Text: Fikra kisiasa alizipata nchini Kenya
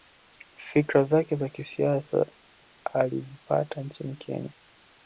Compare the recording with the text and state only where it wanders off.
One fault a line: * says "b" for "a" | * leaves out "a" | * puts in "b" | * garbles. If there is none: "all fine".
* puts in "zake za"